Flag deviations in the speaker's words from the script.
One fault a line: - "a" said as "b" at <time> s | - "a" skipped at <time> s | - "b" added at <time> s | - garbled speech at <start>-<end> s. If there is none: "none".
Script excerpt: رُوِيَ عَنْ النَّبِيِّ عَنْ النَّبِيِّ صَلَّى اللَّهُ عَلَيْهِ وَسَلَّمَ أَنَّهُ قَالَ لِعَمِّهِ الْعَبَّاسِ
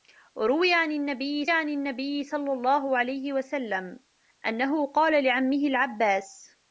none